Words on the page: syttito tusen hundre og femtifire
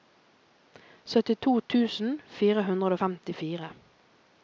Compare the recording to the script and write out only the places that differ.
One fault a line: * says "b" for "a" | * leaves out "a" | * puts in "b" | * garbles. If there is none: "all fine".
* puts in "fire"